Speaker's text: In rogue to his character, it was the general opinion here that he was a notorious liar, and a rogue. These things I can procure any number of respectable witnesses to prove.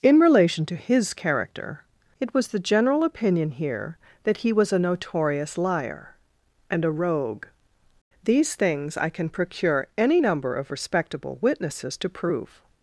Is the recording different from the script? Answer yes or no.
yes